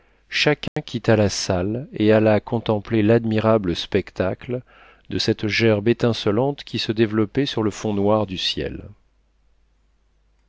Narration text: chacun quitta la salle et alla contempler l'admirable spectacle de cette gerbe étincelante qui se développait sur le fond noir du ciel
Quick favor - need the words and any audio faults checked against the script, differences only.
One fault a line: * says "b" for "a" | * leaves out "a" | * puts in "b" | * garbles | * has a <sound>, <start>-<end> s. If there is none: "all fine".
* has a dropout, 0.7-0.8 s